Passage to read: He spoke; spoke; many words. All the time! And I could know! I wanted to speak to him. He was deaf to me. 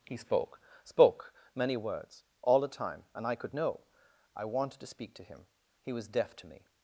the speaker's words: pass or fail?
pass